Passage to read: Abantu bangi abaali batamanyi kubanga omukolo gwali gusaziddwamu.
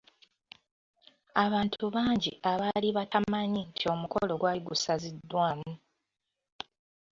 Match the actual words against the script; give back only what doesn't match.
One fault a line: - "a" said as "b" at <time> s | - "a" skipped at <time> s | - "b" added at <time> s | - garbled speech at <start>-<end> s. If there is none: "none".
- "kubanga" said as "nti" at 3.7 s